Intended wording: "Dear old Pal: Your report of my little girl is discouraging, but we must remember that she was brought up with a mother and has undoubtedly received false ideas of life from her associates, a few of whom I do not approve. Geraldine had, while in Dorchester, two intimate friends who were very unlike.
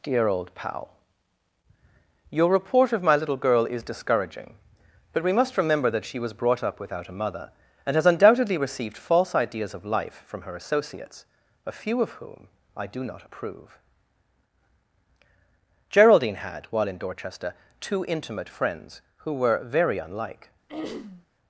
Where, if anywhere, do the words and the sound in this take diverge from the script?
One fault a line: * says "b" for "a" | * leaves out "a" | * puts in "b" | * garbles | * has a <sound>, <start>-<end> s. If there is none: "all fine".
* says "without" for "with"
* has a throat clearing, 20.7-21.3 s